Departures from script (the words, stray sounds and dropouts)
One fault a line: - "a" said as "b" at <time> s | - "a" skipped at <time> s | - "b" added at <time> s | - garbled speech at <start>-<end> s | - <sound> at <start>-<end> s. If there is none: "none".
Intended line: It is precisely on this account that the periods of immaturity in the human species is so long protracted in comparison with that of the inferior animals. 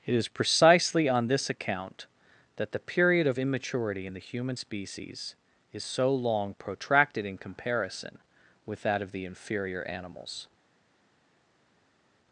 - "periods" said as "period" at 2.8 s